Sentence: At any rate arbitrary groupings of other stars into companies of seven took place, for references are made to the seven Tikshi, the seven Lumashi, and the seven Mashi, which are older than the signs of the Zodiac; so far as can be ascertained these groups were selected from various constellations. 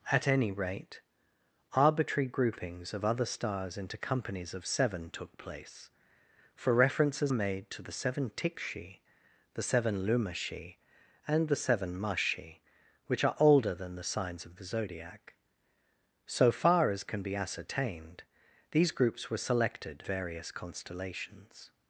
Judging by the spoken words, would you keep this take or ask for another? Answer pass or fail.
fail